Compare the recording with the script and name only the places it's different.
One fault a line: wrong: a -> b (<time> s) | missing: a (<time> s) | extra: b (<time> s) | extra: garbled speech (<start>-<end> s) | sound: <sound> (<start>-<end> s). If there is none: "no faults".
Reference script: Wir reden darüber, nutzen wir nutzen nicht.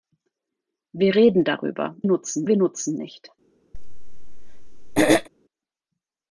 sound: throat clearing (3.7-5.3 s)